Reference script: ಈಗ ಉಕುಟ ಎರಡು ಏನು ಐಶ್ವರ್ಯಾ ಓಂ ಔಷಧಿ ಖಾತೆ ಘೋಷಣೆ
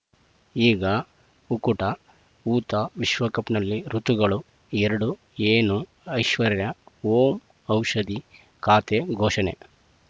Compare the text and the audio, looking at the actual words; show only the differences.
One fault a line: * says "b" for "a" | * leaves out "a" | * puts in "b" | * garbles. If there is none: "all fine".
* puts in "ಊತ ವಿಶ್ವಕಪ್‌ನಲ್ಲಿ ಋತುಗಳು"